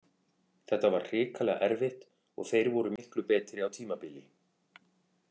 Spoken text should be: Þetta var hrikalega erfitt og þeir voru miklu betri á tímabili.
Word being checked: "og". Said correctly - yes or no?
yes